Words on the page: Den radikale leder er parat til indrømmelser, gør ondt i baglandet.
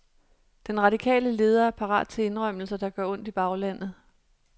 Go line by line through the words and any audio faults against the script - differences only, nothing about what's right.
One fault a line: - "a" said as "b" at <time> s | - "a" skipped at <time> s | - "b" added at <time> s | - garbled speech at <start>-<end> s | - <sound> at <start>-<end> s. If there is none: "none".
- "der" added at 2.8 s